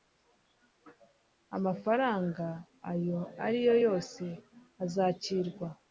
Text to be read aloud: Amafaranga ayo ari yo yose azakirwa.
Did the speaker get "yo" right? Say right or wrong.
right